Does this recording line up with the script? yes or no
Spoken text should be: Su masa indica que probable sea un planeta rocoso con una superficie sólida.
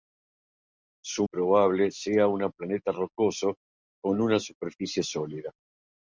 no